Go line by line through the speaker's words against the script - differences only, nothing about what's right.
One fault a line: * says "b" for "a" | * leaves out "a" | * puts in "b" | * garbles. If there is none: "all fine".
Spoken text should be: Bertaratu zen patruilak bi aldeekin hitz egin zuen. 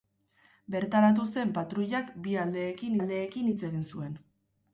* puts in "aldeekin"